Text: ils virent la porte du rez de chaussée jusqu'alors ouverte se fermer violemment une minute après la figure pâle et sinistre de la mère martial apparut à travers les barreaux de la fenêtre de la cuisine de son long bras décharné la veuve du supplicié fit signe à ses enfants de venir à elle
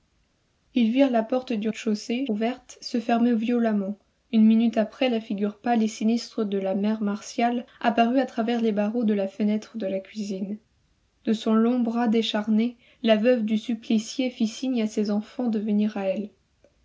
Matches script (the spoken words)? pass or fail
fail